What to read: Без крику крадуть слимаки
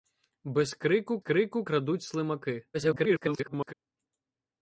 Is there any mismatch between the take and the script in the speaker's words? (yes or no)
yes